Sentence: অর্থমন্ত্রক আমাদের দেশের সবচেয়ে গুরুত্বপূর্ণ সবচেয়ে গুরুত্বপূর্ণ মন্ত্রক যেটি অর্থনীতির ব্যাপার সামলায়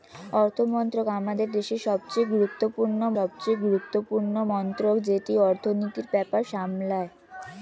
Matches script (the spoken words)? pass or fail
pass